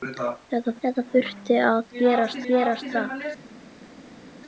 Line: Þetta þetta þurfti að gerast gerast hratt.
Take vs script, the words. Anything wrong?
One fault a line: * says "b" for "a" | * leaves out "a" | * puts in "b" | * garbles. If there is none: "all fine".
all fine